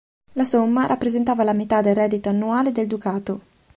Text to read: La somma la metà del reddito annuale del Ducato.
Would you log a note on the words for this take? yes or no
yes